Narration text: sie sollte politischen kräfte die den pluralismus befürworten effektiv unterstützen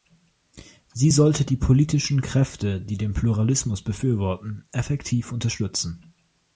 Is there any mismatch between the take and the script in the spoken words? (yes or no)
yes